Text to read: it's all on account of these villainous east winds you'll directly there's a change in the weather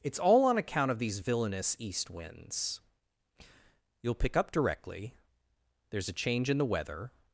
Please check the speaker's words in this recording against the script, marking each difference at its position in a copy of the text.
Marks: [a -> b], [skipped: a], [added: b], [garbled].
it's all on account of these villainous east winds you'll [added: pick up] directly there's a change in the weather